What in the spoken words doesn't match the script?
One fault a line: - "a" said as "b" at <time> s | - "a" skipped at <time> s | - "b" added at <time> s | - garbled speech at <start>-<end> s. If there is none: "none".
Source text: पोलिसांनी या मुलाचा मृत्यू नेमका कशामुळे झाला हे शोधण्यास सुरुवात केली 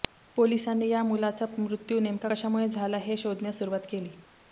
none